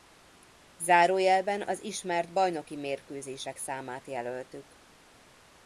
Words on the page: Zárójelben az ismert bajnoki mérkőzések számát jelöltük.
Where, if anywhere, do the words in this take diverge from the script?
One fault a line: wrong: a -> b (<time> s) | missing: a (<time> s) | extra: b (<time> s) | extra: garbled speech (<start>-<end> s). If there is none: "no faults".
no faults